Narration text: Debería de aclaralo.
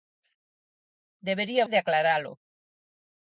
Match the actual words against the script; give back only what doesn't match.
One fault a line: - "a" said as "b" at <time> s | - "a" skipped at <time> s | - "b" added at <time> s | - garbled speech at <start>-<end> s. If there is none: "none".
none